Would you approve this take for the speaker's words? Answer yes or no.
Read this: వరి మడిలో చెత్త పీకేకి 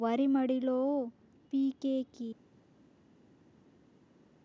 no